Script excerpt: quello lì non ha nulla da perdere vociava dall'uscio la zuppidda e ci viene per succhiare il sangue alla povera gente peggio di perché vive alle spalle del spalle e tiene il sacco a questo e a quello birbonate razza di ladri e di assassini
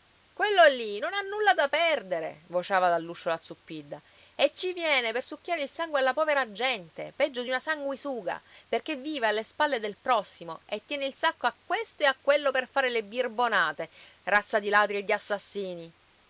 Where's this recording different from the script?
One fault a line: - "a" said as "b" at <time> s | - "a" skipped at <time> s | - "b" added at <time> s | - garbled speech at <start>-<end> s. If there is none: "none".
- "una sanguisuga" added at 7.5 s
- "spalle" said as "prossimo" at 10.0 s
- "per fare le" added at 12.5 s